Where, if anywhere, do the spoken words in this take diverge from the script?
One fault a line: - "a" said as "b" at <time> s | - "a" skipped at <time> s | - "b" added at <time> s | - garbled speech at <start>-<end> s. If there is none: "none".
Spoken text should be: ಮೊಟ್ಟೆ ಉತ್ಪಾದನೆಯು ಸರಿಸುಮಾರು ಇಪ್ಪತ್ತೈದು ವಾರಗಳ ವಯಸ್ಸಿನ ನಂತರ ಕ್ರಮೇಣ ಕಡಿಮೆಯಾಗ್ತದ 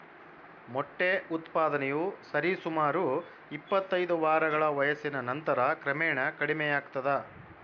none